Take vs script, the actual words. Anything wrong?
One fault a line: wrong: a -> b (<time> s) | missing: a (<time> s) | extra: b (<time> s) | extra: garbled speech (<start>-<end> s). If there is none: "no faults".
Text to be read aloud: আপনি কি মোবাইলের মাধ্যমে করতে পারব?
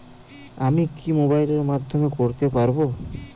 wrong: আপনি -> আমি (0.6 s)